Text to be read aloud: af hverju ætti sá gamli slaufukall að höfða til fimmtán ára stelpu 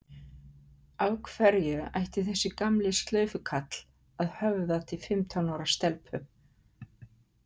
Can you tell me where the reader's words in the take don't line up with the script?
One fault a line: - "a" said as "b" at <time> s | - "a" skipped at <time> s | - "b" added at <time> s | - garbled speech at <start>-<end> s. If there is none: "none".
- "sá" said as "þessi" at 2.3 s